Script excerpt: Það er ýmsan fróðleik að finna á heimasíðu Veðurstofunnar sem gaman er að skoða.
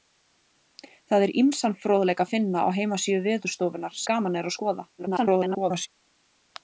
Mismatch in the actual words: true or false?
true